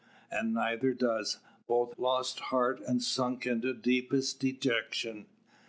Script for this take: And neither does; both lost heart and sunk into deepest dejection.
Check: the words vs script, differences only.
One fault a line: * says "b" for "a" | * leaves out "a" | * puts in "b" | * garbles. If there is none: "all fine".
all fine